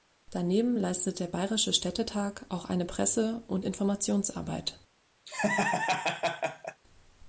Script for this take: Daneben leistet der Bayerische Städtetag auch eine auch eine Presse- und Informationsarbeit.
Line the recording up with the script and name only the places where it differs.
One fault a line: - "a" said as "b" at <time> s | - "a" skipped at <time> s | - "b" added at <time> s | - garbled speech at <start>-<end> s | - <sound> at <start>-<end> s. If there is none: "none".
- "auch eine" skipped at 2.8 s
- laugh at 5.3-6.8 s